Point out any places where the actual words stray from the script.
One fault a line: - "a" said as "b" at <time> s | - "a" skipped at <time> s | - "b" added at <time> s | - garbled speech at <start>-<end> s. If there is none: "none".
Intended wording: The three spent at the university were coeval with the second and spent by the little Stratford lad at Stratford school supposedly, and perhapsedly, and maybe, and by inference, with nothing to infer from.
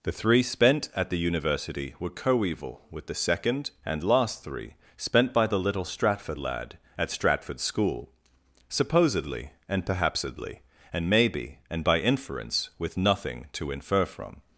- "last three" added at 4.0 s